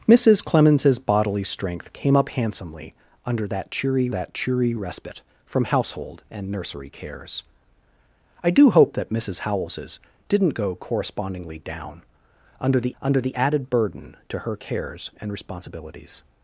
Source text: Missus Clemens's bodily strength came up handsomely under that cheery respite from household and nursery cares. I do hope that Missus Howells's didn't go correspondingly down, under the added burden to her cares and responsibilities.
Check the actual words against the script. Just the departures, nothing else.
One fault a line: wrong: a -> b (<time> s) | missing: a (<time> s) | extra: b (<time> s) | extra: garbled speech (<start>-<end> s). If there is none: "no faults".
extra: that cheery (4.1 s)
extra: under the (13.0 s)